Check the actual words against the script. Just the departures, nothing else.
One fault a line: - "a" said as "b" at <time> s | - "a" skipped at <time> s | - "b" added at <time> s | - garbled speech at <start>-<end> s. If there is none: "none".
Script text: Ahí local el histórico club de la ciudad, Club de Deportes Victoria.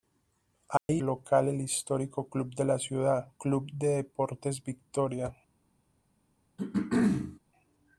none